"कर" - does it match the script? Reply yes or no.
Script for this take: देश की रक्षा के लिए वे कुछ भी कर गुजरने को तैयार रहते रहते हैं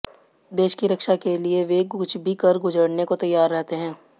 yes